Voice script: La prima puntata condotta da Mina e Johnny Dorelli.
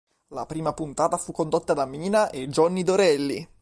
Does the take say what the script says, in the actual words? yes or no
no